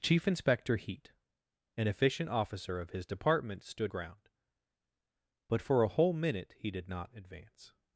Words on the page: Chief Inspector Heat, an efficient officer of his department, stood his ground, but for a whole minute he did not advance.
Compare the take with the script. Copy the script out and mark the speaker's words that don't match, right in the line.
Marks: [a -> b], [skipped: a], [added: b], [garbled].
Chief Inspector Heat, an efficient officer of his department, stood [skipped: his] ground, but for a whole minute he did not advance.